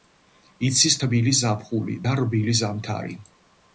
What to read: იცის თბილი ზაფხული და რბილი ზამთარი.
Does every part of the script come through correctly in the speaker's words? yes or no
yes